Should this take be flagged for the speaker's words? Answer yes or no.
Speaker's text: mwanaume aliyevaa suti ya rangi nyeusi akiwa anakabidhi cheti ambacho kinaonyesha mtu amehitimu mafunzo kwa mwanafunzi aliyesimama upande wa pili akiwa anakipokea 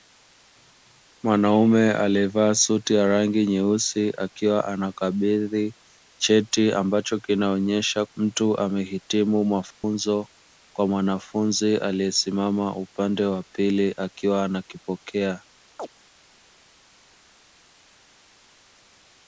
no